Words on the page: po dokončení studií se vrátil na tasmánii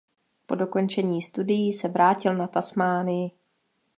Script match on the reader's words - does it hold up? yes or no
yes